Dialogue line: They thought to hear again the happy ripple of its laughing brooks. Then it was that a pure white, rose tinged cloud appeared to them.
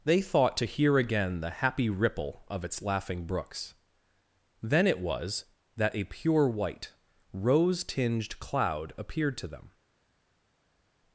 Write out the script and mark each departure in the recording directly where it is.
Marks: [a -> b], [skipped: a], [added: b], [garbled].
They thought to hear again the happy ripple of its laughing brooks. Then it was that a pure white, rose tinged cloud appeared to them.